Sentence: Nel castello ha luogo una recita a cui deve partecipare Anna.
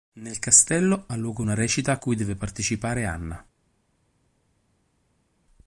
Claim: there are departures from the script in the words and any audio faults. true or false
false